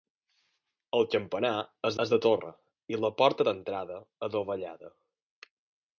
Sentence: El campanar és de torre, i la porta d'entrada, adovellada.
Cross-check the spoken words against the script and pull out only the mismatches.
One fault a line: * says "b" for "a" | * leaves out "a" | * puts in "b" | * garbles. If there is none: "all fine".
* puts in "és"